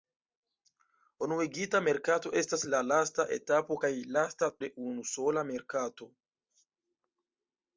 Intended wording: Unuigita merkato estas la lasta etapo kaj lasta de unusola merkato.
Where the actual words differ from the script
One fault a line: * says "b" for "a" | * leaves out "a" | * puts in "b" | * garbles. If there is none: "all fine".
all fine